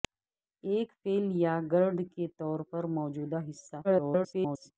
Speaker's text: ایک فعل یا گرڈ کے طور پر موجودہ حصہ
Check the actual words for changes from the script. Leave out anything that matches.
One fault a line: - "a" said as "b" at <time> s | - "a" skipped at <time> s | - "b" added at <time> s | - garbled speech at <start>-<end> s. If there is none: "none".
- garbled speech at 3.8-4.7 s